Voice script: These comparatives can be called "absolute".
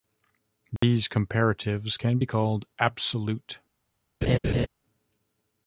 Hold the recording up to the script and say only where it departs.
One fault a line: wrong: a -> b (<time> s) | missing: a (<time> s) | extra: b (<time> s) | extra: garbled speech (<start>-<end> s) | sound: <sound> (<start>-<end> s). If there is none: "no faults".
sound: dropout (0.8-0.8 s)
sound: laugh (4.2-4.7 s)